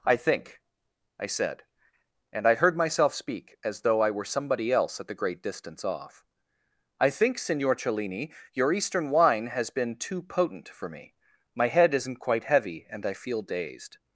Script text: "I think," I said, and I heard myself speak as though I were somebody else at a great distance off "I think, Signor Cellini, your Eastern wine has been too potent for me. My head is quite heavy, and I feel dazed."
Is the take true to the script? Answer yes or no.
no